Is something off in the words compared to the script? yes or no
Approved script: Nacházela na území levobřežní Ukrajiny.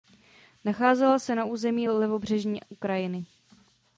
yes